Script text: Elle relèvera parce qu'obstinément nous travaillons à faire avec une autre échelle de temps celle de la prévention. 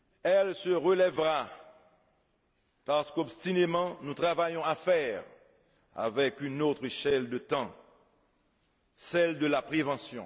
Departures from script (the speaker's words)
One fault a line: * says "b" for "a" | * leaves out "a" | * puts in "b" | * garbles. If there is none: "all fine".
* puts in "se"